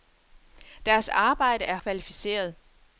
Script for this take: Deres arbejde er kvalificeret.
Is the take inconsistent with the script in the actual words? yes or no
no